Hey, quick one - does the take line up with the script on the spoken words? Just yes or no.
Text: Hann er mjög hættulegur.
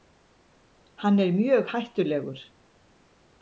yes